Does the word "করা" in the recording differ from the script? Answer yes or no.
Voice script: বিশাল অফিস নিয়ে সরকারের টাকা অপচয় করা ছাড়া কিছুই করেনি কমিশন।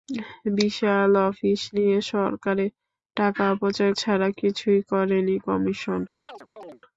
yes